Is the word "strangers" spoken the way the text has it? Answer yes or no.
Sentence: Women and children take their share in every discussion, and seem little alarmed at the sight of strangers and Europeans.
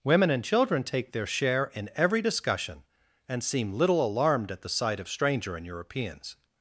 no